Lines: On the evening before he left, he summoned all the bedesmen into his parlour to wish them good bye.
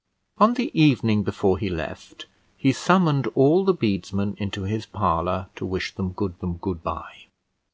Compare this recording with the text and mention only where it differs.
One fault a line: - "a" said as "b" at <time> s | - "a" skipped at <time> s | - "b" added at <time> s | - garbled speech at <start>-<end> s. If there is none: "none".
- "them good" added at 6.4 s